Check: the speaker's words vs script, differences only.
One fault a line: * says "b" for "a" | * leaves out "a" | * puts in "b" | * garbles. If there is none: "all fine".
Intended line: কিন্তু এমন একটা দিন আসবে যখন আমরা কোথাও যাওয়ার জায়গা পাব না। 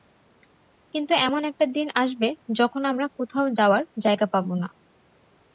all fine